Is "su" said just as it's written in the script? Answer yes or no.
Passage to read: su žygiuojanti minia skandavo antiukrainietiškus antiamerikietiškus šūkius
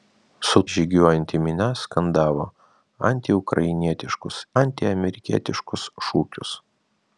yes